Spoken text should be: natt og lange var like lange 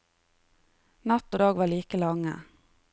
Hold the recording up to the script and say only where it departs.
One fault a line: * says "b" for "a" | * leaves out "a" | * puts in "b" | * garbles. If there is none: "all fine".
* says "dag" for "lange"